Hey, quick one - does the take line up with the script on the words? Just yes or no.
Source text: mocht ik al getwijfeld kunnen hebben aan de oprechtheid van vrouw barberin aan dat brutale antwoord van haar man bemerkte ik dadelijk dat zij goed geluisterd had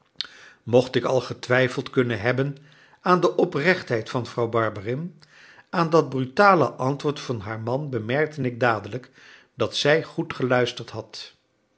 yes